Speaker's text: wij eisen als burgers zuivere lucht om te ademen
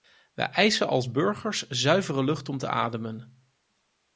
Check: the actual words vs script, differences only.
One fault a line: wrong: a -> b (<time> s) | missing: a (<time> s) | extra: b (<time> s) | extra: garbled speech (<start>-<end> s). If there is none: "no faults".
no faults